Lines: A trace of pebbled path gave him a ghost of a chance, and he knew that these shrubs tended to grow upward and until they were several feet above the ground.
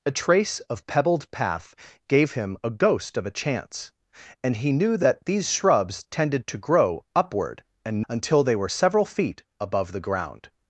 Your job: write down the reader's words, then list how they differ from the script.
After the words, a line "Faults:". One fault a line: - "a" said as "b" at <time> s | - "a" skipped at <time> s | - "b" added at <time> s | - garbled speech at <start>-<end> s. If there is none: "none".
A trace of pebbled path gave him a ghost of a chance, and he knew that these shrubs tended to grow upward and until they were several feet above the ground.
Faults:
none